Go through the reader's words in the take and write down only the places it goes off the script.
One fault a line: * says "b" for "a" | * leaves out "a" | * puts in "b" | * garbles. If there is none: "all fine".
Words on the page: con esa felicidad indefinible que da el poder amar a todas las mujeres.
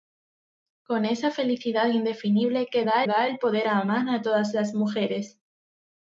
* puts in "da"